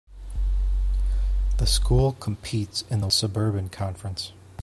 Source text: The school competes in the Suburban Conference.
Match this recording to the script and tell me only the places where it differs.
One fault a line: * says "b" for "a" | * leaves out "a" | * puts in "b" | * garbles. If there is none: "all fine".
all fine